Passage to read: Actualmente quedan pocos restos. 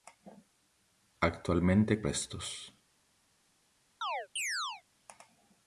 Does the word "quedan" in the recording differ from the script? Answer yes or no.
yes